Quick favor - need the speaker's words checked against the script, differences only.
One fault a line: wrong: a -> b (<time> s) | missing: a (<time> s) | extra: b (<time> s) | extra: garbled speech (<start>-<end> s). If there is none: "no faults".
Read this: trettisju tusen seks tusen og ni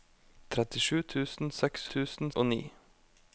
no faults